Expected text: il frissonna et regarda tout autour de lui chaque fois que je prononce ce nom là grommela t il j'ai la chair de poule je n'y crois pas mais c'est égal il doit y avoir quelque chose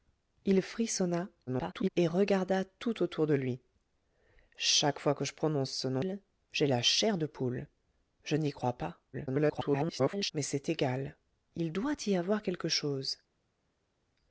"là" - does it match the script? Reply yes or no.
no